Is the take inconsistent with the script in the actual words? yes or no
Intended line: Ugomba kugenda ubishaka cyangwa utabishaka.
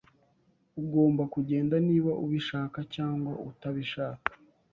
yes